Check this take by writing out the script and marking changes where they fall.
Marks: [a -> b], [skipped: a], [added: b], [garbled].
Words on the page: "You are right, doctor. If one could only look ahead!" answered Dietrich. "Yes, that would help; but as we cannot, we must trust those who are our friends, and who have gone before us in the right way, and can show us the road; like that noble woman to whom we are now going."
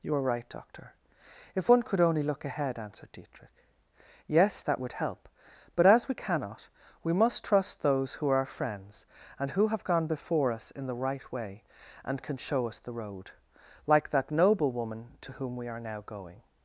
"You are right, doctor. If one could only look ahead!" answered Dietrich. "Yes, that would help; but as we cannot, we must trust those who are our friends, and who have gone before us in the right way, and can show us the road; like that noble woman to whom we are now going."